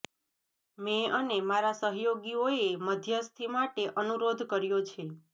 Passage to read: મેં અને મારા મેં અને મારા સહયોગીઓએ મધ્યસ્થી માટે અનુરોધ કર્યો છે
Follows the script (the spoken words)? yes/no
no